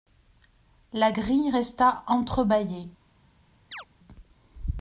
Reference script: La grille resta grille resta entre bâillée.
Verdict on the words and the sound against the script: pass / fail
fail